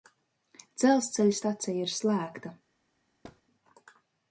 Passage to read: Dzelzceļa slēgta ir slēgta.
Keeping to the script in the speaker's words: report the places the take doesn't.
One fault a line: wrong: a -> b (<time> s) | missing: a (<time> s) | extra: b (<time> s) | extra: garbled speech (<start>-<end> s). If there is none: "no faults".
wrong: slēgta -> stacija (1.4 s)